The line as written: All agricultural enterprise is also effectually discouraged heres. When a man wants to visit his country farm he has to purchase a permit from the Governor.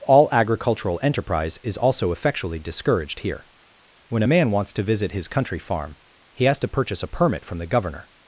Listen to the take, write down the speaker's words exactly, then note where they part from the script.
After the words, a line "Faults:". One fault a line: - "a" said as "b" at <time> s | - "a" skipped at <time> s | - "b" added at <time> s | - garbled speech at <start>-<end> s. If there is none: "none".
All agricultural enterprise is also effectually discouraged here. When a man wants to visit his country farm he has to purchase a permit from the Governor.
Faults:
- "heres" said as "here" at 3.2 s